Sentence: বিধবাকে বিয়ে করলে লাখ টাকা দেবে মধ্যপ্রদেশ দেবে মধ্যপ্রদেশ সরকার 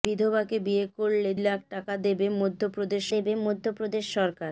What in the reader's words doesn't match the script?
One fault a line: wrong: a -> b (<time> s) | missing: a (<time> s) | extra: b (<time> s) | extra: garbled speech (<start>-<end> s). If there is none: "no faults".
no faults